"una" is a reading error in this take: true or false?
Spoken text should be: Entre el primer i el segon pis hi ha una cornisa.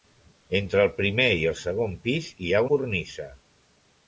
true